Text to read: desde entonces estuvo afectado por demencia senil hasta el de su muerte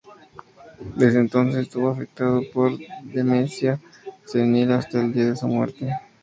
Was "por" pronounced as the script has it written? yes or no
yes